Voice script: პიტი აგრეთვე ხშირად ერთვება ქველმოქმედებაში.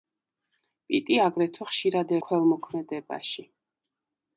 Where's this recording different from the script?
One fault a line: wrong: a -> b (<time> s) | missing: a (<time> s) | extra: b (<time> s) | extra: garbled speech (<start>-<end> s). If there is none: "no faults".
missing: ერთვება (2.2 s)